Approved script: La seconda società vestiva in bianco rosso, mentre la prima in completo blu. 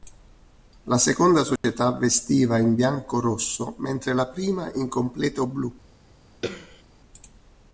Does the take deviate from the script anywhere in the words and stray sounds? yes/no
yes